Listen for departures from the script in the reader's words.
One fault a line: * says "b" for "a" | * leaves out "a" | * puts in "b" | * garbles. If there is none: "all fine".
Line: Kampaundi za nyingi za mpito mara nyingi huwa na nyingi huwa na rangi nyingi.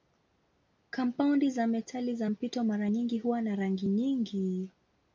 * says "metali" for "nyingi"
* leaves out "nyingi huwa na"